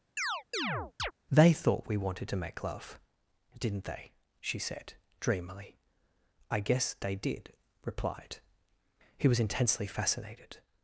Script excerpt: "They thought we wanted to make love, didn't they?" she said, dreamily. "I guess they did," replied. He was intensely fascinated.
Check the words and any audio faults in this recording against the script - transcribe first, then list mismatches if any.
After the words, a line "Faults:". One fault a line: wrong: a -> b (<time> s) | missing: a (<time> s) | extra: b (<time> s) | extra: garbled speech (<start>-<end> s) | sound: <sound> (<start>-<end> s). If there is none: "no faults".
"They thought we wanted to make love, didn't they?" she said, dreamily. "I guess they did," replied. He was intensely fascinated.
Faults:
sound: chirp (0.2-1.1 s)